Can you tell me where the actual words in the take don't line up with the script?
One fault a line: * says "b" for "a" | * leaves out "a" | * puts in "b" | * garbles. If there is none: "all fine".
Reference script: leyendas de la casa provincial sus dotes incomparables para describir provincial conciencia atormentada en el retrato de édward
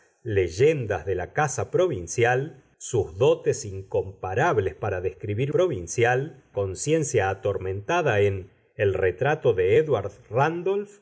all fine